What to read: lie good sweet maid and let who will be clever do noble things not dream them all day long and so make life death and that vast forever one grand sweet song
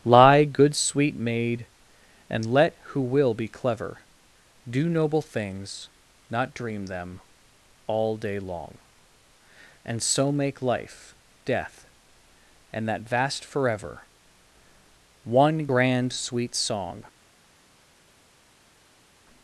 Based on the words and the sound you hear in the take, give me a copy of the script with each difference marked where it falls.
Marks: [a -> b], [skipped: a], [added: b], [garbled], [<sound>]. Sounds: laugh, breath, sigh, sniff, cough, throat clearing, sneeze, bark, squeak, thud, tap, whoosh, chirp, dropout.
lie good sweet maid and let who will be clever do noble things not dream them all day long and so make life death and that vast forever one grand sweet song